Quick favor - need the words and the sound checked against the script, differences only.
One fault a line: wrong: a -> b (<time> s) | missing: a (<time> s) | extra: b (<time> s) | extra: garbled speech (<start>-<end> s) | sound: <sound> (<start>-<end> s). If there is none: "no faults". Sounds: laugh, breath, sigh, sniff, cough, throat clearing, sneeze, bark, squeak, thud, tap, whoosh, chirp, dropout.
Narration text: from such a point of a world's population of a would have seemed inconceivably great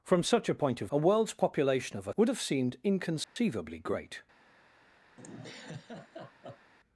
sound: dropout (3.2-3.4 s)
sound: laugh (5.2-6.7 s)